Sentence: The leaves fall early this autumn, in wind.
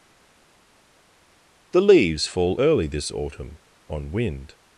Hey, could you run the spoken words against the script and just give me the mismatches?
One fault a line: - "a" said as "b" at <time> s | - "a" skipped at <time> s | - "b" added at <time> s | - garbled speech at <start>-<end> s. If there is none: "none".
- "in" said as "on" at 3.9 s